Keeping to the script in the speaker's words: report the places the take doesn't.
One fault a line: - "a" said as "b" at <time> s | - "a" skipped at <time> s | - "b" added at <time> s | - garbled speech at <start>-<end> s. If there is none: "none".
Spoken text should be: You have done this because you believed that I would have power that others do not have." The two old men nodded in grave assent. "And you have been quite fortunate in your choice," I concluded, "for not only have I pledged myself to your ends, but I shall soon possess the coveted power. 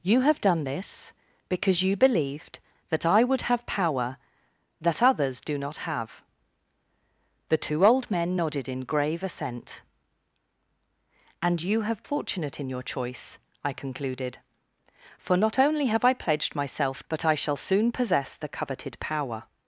- "been quite" skipped at 12.0 s
- "to your ends" skipped at 17.0 s